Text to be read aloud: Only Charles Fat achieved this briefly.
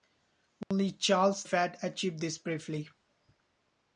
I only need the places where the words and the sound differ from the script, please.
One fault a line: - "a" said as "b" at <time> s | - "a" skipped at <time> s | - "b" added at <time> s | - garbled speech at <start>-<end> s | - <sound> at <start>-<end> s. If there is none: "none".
- dropout at 0.6-0.7 s